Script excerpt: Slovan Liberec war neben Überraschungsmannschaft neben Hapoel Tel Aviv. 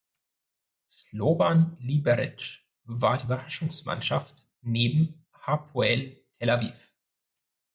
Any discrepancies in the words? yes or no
yes